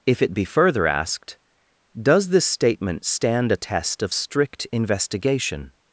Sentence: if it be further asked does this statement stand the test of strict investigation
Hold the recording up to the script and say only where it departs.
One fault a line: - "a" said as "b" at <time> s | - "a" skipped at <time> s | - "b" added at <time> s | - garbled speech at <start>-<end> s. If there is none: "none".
- "the" said as "a" at 3.5 s